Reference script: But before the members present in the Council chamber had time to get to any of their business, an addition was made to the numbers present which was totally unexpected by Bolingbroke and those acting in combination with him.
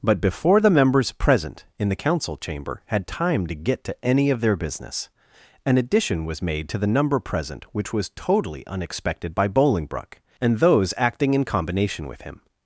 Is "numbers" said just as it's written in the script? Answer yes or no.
no